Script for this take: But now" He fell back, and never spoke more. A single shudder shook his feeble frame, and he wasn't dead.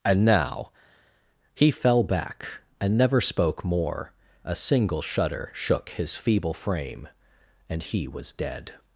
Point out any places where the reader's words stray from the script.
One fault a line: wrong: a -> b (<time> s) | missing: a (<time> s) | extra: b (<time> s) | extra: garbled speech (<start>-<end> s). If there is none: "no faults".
wrong: But -> And (0.0 s)
wrong: wasn't -> was (8.1 s)